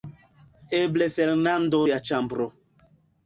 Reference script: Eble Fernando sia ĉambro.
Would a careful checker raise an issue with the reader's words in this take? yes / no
no